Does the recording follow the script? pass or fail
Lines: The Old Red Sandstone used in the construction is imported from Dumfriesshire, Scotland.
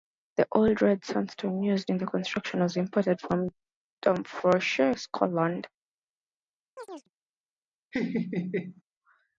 fail